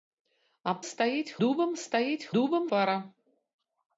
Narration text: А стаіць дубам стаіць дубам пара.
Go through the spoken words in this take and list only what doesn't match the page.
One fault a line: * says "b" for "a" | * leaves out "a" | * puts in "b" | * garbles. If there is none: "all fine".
all fine